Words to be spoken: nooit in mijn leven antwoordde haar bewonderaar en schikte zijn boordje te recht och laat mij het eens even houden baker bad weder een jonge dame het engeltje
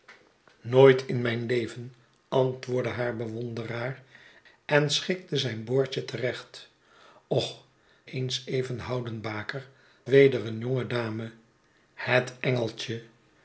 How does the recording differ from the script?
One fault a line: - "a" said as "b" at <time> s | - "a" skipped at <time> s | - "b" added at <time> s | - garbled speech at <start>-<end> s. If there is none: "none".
- "laat mij het" skipped at 7.7 s
- "bad" skipped at 9.7 s